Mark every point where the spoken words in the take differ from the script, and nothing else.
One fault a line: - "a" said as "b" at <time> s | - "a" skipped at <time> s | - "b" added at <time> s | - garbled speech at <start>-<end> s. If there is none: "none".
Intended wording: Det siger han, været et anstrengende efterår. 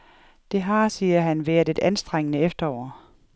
- "har" added at 0.6 s